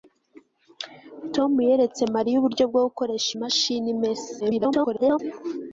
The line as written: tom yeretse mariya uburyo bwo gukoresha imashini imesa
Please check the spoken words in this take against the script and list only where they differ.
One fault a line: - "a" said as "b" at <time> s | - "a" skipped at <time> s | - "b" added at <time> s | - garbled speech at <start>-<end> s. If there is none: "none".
- garbled speech at 4.4-5.2 s